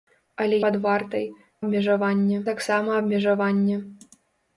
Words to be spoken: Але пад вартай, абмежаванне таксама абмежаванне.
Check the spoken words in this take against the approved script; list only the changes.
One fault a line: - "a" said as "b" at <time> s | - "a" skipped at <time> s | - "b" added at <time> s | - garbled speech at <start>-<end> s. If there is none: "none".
none